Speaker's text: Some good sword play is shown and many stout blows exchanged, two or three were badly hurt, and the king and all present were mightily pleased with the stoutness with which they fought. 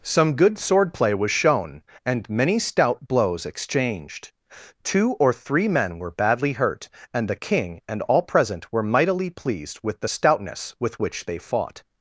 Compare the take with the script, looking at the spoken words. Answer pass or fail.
fail